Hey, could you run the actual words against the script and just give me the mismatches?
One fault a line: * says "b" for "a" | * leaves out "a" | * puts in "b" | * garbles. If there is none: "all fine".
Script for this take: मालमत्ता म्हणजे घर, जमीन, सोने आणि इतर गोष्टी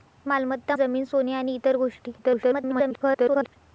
* leaves out "म्हणजे घर"
* garbles